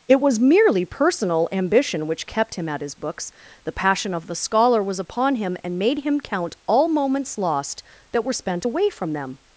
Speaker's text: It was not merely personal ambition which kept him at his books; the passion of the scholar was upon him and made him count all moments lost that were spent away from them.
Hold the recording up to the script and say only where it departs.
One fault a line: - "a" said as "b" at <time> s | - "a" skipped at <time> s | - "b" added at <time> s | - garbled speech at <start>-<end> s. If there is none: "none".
- "not" skipped at 0.4 s